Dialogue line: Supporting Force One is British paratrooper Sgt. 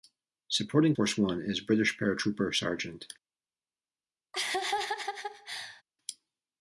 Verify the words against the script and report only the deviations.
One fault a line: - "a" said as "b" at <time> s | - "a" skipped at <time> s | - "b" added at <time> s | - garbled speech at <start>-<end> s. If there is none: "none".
none